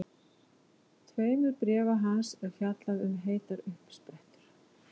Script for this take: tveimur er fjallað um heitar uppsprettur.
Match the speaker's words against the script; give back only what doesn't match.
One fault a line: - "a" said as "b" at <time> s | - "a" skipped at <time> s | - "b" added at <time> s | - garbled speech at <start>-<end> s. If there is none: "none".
- "bréfa hans" added at 1.6 s